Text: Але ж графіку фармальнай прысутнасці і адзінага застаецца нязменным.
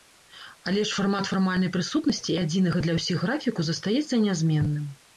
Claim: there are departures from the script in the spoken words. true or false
true